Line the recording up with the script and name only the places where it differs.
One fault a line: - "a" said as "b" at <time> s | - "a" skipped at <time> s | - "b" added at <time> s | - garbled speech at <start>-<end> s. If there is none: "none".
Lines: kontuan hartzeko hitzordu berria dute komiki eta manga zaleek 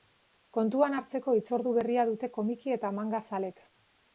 none